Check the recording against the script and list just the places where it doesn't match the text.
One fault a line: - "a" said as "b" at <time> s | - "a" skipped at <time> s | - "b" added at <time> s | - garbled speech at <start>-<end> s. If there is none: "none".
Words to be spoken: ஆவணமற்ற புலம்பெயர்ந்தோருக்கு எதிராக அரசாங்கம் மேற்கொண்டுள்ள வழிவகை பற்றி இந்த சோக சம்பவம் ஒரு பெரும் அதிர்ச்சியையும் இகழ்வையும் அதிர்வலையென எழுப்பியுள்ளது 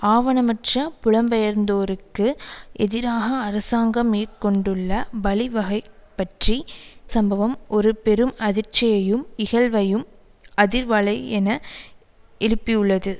- "இந்த சோக" skipped at 6.6 s